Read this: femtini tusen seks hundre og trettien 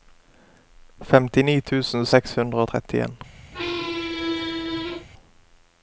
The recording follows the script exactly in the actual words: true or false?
true